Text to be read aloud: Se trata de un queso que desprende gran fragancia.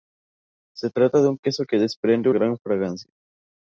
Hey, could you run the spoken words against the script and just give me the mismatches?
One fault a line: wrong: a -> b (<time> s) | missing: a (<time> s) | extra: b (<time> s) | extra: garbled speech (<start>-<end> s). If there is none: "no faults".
no faults